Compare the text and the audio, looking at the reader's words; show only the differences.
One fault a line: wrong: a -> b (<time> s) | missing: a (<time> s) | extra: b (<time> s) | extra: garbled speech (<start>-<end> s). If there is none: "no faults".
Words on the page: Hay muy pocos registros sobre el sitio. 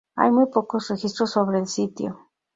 no faults